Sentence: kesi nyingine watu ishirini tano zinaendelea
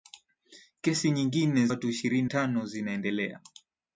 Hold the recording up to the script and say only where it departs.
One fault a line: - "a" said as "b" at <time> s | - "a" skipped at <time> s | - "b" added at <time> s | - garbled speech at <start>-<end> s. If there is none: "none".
none